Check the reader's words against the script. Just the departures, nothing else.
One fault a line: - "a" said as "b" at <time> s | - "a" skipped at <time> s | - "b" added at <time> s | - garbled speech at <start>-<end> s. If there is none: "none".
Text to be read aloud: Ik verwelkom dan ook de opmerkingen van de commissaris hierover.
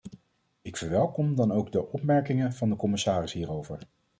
none